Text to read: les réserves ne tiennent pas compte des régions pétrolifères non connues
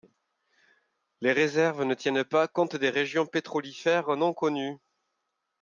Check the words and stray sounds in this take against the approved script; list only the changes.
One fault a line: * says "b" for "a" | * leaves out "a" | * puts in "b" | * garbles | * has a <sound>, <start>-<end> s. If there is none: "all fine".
all fine